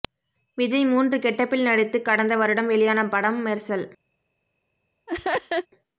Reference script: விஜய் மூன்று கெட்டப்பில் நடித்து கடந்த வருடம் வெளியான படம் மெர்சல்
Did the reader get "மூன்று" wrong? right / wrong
right